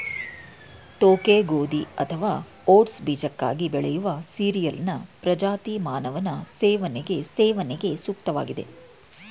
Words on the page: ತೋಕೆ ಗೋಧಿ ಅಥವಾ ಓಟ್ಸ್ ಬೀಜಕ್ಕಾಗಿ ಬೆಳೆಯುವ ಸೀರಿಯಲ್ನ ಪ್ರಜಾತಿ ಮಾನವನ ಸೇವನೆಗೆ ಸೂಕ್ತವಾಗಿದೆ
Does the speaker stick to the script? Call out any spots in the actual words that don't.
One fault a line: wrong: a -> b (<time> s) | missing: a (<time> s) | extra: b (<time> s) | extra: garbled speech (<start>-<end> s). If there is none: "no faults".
extra: ಸೇವನೆಗೆ (7.3 s)